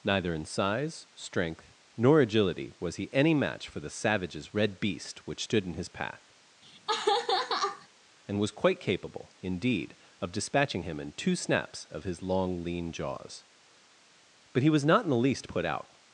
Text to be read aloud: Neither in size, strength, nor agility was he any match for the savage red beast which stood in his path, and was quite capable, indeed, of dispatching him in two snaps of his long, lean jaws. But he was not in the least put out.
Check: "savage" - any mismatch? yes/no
yes